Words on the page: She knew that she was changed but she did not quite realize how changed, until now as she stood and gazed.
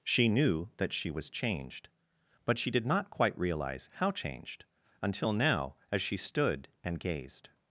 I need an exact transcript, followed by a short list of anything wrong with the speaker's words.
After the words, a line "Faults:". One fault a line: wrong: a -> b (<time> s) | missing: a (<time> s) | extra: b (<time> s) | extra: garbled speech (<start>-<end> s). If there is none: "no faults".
She knew that she was changed but she did not quite realize how changed, until now as she stood and gazed.
Faults:
no faults